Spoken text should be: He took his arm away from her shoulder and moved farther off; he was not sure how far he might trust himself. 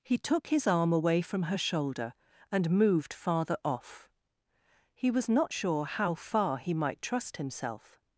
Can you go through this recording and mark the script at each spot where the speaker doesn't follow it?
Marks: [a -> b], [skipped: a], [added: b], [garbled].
He took his arm away from her shoulder and moved farther off; he was not sure how far he might trust himself.